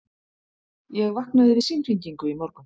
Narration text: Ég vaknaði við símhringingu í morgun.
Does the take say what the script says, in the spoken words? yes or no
yes